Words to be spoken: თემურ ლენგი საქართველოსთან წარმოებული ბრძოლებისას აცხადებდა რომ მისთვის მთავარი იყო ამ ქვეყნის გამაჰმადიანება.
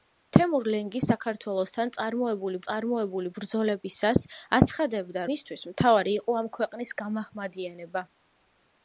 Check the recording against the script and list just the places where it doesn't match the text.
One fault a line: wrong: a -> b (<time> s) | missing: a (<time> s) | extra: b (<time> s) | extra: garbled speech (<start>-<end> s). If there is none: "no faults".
extra: წარმოებული (2.7 s)
missing: რომ (5.3 s)